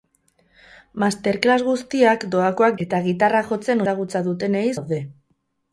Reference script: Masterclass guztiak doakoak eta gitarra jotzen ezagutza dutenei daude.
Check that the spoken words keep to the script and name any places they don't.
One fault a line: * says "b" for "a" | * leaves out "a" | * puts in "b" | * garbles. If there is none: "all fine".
all fine